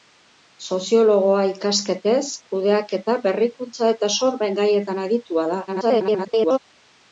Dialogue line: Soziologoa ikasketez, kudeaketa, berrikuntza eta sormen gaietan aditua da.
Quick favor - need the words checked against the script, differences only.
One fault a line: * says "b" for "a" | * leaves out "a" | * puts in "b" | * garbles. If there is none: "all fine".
* garbles